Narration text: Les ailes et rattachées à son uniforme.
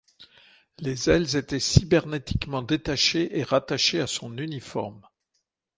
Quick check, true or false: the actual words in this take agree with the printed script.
false